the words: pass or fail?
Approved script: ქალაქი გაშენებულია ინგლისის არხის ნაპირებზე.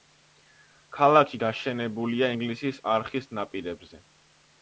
pass